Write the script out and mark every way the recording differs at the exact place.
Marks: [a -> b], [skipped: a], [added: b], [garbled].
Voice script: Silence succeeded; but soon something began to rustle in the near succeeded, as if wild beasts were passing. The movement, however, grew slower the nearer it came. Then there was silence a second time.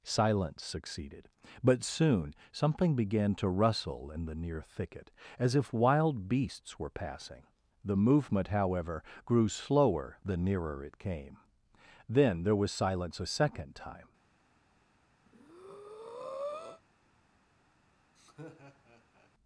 Silence succeeded; but soon something began to rustle in the near [succeeded, -> thicket] as if wild beasts were passing. The movement, however, grew slower the nearer it came. Then there was silence a second time.